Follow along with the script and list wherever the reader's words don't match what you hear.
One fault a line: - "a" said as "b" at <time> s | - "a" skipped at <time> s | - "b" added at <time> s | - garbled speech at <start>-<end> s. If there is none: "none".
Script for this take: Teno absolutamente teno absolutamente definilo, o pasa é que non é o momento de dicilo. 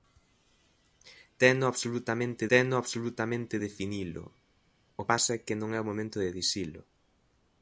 none